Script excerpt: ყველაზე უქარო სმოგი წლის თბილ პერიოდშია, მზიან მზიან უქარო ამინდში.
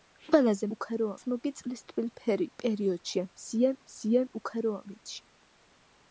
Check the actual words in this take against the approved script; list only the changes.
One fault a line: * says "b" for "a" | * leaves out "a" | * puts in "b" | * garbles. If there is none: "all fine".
all fine